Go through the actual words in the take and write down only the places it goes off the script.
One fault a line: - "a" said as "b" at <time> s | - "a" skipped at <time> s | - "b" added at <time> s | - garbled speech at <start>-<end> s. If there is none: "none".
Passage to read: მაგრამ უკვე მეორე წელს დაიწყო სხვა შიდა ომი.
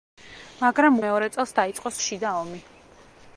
- "უკვე" skipped at 0.9 s
- "სხვა" skipped at 1.9 s